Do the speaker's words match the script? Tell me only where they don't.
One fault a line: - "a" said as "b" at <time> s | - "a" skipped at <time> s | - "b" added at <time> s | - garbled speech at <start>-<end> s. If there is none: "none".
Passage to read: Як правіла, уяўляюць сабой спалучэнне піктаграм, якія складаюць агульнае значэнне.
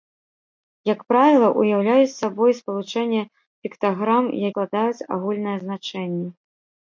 - "якія" skipped at 4.3 s